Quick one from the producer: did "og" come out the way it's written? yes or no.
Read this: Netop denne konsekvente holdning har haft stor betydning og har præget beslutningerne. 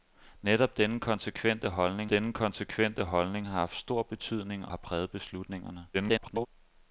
no